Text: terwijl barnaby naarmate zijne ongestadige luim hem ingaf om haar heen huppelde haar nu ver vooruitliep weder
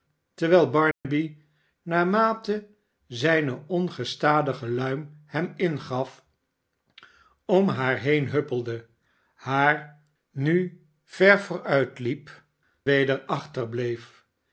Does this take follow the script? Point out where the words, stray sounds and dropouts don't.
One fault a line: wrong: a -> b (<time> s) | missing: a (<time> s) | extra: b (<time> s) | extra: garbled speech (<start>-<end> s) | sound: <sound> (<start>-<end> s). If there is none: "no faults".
sound: dropout (0.9-1.0 s)